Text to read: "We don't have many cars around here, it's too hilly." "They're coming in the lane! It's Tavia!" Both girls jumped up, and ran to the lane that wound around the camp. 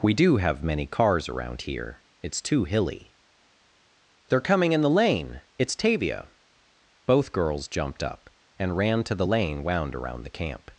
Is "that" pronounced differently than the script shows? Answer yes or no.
yes